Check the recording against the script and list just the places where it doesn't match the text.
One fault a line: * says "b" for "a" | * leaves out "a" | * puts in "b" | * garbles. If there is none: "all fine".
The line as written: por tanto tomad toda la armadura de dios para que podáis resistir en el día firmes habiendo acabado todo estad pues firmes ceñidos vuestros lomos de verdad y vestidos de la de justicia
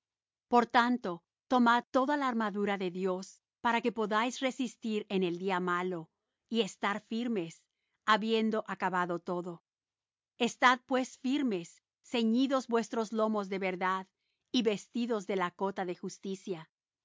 * puts in "malo y estar"
* puts in "cota"